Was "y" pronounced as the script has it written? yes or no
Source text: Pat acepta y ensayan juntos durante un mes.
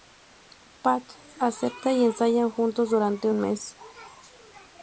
yes